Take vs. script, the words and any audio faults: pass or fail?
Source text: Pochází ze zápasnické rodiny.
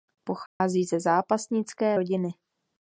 fail